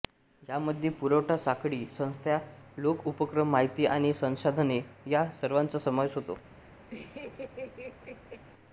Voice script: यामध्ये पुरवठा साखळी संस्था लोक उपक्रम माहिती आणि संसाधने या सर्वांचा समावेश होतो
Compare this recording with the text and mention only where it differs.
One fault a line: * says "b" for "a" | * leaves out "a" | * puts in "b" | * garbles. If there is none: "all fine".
all fine